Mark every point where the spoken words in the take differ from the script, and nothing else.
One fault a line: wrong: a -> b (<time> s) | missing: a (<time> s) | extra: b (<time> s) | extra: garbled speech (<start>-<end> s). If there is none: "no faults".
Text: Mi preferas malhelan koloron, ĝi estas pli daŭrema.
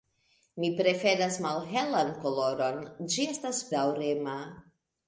missing: pli (3.6 s)